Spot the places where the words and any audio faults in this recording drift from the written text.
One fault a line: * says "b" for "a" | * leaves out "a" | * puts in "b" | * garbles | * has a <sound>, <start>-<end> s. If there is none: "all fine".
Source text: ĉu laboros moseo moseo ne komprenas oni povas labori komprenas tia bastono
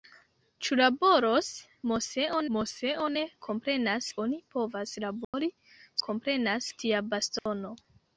* has a dropout, 5.2-5.3 s
* has a dropout, 7.4-7.5 s